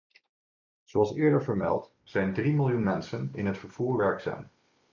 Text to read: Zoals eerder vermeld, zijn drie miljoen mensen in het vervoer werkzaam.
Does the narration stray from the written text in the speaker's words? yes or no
no